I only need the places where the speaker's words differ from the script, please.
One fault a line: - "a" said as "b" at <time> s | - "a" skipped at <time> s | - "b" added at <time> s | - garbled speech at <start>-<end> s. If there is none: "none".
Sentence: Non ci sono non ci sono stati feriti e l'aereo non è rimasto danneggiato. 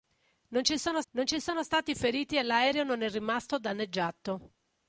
none